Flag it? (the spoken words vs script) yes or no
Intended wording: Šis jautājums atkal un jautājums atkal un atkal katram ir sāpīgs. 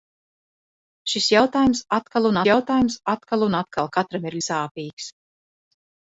no